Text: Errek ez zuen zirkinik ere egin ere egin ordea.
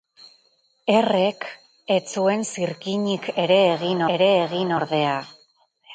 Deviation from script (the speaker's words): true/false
false